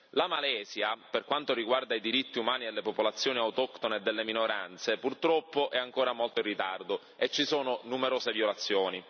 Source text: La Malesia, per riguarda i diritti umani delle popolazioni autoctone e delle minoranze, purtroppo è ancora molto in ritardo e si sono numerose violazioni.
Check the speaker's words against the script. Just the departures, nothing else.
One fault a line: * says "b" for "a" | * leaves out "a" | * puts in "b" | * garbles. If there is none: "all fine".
* puts in "quanto"
* says "ci" for "si"